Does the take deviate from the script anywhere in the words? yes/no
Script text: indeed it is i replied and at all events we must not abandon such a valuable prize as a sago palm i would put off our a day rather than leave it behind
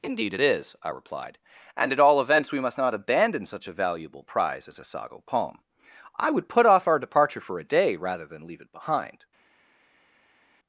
yes